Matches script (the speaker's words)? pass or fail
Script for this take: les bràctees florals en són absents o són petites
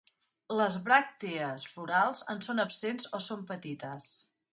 pass